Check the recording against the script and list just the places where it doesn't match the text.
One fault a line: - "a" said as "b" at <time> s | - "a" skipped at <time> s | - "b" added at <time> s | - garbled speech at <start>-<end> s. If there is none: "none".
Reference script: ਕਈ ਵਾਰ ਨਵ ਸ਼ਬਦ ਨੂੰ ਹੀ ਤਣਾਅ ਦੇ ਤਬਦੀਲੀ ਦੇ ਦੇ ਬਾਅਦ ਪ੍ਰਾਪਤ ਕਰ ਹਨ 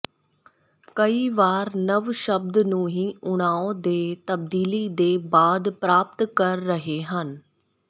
- "ਦੇ" skipped at 5.2 s
- "ਰਹੇ" added at 6.6 s